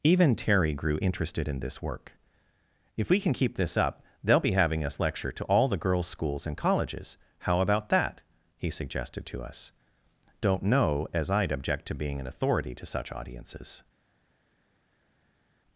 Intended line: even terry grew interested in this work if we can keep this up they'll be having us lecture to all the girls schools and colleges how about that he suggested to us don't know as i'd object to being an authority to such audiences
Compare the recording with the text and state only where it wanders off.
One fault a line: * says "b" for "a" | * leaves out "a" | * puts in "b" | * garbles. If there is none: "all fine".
all fine